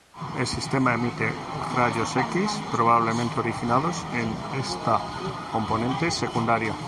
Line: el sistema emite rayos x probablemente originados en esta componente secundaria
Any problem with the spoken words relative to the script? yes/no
no